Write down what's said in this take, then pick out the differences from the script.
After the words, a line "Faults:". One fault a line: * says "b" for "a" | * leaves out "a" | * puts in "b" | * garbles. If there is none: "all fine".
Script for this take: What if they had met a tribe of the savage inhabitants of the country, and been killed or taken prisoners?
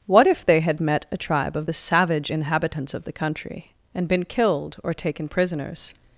What if they had met a tribe of the savage inhabitants of the country, and been killed or taken prisoners?
Faults:
all fine